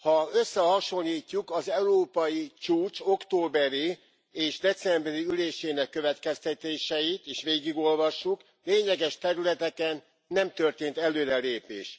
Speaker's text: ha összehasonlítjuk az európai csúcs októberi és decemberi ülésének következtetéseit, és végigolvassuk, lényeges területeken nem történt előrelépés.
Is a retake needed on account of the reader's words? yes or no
no